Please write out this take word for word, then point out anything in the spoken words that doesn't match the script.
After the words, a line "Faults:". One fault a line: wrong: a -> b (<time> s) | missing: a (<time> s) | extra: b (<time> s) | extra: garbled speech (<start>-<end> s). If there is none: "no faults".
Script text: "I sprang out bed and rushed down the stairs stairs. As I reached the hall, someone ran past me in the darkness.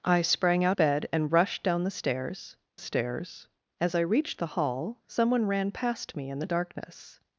"I sprang out bed and rushed down the stairs stairs. As I reached the hall, someone ran past me in the darkness.
Faults:
no faults